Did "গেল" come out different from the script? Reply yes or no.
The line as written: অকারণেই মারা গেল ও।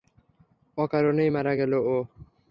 no